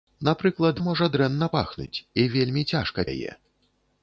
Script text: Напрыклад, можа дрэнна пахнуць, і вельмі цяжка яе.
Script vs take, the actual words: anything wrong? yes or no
no